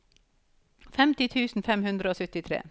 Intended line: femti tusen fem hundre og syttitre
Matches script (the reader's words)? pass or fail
pass